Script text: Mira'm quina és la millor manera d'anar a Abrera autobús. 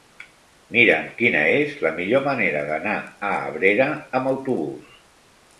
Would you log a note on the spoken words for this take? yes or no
yes